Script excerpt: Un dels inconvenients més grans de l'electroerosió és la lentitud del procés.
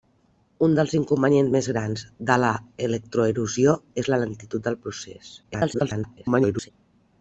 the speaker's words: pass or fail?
fail